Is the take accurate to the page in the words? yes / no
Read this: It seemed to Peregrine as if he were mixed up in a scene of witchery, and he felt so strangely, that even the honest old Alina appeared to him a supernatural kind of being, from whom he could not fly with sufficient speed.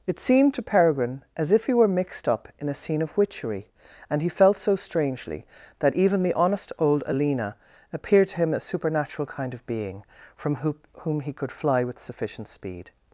no